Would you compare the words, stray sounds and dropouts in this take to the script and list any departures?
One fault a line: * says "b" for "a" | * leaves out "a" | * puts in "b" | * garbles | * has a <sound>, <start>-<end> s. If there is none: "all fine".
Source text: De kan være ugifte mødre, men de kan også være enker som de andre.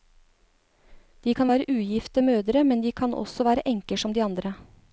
all fine